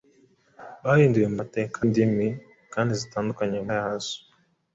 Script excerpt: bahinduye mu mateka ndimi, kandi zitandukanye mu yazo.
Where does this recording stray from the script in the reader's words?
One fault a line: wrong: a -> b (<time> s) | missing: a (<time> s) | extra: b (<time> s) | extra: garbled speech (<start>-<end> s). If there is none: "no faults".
no faults